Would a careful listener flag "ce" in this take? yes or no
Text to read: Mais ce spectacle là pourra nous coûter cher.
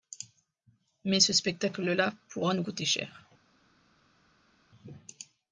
no